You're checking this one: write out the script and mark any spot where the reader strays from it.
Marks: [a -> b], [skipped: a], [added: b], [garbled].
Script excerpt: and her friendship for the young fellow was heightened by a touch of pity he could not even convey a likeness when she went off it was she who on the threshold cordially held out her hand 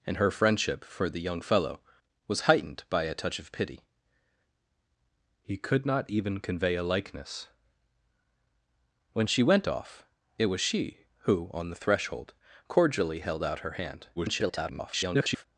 and her friendship for the young fellow was heightened by a touch of pity he could not even convey a likeness when she went off it was she who on the threshold cordially held out her hand [garbled]